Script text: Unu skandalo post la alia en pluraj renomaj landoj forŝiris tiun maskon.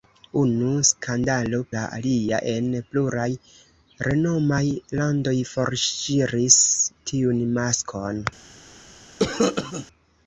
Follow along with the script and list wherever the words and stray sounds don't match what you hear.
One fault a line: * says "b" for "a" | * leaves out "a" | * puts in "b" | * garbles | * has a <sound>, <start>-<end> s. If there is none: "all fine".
* leaves out "post"
* has a cough, 9.2-9.9 s